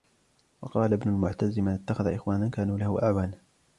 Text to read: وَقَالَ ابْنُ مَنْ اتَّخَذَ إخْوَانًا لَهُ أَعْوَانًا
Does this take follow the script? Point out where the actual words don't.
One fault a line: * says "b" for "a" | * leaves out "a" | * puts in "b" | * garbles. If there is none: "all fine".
* puts in "الْمُعْتَزِّ"
* puts in "كَانُوا"